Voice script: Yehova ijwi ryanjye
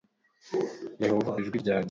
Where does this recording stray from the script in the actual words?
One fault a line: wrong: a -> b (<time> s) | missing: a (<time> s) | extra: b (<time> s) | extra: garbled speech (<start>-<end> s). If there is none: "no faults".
no faults